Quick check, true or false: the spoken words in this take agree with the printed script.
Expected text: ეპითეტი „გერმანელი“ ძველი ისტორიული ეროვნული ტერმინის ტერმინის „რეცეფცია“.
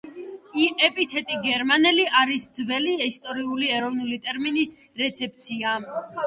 false